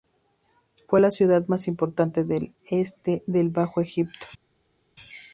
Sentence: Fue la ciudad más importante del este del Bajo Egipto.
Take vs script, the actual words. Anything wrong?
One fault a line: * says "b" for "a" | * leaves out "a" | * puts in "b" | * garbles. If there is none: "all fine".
all fine